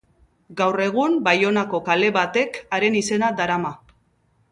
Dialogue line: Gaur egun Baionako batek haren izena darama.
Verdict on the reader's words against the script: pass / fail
fail